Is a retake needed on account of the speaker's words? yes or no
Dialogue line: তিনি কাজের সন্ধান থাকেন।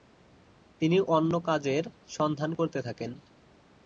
yes